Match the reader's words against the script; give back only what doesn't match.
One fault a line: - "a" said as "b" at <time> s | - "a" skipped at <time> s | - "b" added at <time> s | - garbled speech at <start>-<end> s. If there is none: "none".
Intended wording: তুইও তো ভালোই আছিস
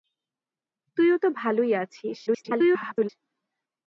- garbled speech at 2.3-3.1 s